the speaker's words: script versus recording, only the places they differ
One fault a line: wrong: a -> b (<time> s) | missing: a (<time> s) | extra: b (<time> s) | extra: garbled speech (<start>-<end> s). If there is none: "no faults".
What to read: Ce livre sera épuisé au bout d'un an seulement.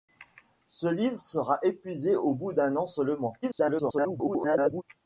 extra: garbled speech (3.4-4.8 s)